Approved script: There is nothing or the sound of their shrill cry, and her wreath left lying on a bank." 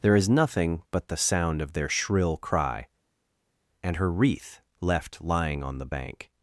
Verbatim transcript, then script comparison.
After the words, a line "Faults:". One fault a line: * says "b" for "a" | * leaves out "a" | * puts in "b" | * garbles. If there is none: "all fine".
There is nothing but the sound of their shrill cry, and her wreath left lying on the bank."
Faults:
* says "but" for "or"
* says "the" for "a"